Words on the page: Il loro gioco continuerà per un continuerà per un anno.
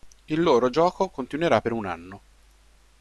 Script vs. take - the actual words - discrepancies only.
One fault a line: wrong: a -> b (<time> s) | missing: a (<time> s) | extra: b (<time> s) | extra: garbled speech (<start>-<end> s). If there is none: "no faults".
missing: continuerà per un (1.9 s)